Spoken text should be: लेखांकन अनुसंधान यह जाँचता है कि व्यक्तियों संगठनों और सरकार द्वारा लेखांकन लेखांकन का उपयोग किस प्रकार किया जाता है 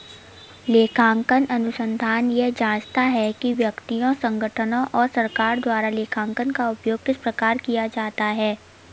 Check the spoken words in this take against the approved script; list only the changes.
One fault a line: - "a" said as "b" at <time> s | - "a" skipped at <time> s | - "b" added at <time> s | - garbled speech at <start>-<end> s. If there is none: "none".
- "लेखांकन" skipped at 6.5 s